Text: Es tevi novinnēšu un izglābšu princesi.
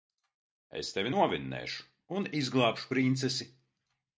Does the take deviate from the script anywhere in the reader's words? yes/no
no